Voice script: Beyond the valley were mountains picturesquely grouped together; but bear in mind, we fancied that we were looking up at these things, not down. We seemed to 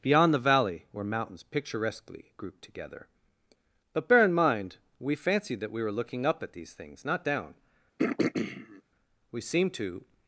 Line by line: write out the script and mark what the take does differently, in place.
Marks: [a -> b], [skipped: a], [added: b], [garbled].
Beyond the valley were mountains picturesquely grouped together; but bear in mind, we fancied that we were looking up at these things, not down. We seemed to